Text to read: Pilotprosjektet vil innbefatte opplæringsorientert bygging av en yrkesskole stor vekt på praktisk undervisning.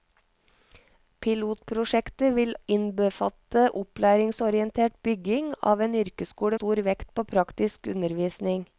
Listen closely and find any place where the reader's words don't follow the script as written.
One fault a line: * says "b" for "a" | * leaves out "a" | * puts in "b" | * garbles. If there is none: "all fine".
all fine